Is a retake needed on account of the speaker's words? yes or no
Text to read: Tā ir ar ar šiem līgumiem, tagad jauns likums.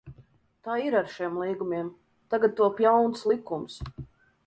yes